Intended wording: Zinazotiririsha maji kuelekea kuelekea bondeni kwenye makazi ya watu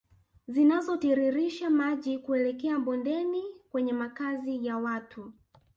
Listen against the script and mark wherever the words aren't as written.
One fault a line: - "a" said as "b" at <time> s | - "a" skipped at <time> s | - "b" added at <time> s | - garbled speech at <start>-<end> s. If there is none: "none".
- "kuelekea" skipped at 2.8 s